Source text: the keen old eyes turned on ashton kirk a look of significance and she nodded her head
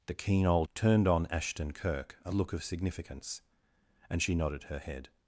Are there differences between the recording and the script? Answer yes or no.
yes